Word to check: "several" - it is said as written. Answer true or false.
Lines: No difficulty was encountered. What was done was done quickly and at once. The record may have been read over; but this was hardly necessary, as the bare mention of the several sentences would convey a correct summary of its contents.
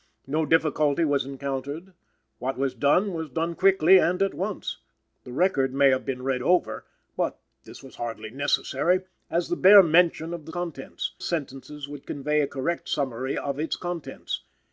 false